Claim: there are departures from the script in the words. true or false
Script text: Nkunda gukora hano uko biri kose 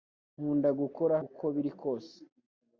true